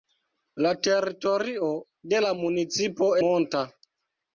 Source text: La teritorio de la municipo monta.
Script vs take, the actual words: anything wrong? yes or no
no